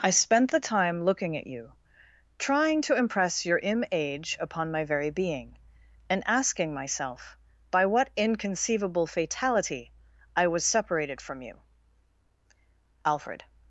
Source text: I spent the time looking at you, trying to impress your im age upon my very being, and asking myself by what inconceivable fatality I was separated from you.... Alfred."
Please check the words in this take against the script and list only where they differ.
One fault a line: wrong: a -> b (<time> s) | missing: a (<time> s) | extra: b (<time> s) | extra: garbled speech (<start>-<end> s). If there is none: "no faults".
no faults